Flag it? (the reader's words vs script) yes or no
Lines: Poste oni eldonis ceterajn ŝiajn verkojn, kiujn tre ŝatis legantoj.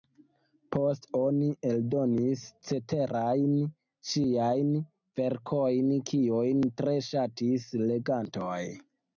no